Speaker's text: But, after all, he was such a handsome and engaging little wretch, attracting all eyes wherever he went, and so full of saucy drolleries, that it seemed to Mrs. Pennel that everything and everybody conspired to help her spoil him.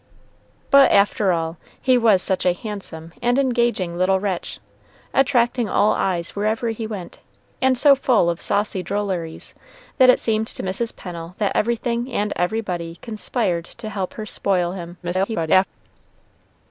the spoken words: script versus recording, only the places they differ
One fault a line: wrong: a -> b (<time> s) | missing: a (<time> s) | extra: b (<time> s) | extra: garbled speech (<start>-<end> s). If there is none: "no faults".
extra: garbled speech (15.0-15.7 s)